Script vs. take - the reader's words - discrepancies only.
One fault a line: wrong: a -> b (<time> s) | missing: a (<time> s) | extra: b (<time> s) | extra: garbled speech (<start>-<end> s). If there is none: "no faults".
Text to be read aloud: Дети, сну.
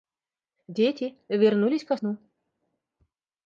extra: вернулись ко (1.3 s)